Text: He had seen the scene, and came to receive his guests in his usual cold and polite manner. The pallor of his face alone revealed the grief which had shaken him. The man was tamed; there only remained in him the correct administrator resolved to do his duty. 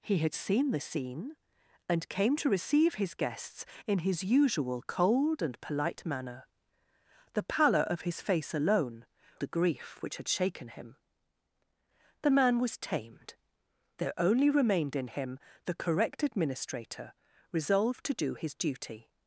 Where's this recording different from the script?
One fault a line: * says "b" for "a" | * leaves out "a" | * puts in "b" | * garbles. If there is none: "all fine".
* leaves out "revealed"